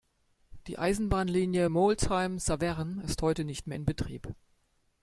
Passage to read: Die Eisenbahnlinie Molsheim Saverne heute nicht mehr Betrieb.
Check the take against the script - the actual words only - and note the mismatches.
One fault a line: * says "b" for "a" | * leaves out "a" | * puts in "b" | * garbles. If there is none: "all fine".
* puts in "ist"
* puts in "in"